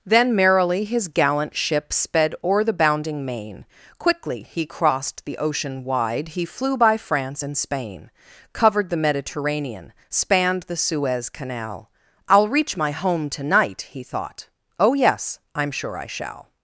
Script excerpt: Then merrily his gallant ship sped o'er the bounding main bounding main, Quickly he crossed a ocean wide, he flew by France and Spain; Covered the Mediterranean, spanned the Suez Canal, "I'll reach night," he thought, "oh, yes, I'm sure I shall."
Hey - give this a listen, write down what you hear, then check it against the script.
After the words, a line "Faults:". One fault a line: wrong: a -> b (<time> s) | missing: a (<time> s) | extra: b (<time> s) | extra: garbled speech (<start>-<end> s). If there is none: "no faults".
Then merrily his gallant ship sped o'er the bounding main, Quickly he crossed the ocean wide, he flew by France and Spain; Covered the Mediterranean, spanned the Suez Canal, "I'll reach my home to night," he thought, "oh, yes, I'm sure I shall."
Faults:
missing: bounding main (3.6 s)
wrong: a -> the (5.2 s)
extra: my home to (12.8 s)